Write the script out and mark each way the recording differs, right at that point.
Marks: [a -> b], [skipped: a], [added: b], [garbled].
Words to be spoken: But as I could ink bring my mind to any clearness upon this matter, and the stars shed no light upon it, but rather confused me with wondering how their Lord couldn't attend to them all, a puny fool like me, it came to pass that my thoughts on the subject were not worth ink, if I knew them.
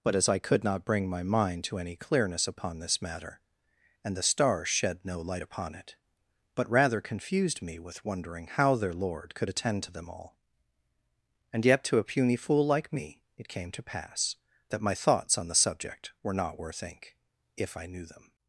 But as I could [ink -> not] bring my mind to any clearness upon this matter, and the stars shed no light upon it, but rather confused me with wondering how their Lord [couldn't -> could] attend to them all, [added: and yet to] a puny fool like me, it came to pass that my thoughts on the subject were not worth ink, if I knew them.